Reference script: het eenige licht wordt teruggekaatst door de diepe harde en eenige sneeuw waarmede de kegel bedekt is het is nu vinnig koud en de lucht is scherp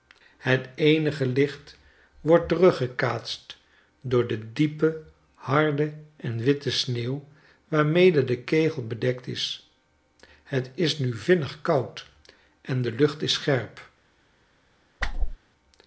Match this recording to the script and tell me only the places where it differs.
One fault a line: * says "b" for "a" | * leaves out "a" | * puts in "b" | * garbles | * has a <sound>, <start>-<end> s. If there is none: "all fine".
* says "witte" for "eenige"
* has a whoosh, 15.0-15.4 s